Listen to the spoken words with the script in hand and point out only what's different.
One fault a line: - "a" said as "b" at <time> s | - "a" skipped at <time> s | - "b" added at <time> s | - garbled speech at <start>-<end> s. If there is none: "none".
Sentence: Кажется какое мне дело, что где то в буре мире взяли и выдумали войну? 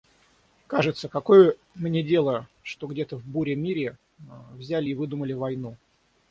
none